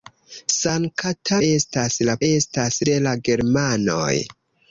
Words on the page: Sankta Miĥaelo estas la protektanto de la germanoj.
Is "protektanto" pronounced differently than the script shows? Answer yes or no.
yes